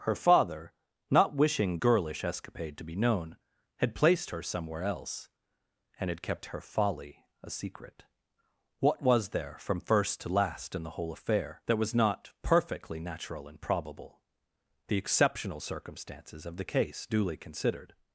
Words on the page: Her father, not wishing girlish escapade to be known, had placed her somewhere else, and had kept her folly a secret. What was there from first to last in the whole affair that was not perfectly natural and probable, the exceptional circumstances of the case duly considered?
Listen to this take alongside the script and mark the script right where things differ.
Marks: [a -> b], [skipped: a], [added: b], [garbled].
Her father, not wishing girlish escapade to be known, had placed her somewhere else, and had kept her folly a secret. What was there from first to last in the whole affair that was not perfectly natural and probable, the exceptional circumstances of the case duly considered?